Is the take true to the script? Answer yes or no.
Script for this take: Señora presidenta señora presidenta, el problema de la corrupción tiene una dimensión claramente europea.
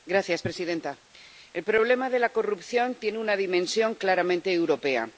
no